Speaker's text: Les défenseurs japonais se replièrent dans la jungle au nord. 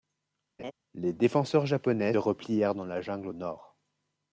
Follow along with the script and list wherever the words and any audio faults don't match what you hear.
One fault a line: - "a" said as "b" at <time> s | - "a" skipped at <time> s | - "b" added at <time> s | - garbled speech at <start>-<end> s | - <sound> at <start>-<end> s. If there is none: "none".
- laugh at 0.6-0.7 s
- "se" skipped at 2.1 s